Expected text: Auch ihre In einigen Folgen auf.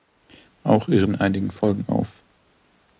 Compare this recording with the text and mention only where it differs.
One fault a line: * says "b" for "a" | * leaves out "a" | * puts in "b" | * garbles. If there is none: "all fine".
all fine